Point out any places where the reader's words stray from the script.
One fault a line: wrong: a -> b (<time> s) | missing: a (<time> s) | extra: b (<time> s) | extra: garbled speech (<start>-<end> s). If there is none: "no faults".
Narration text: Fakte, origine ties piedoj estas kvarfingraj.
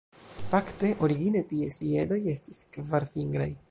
wrong: estas -> estis (2.3 s)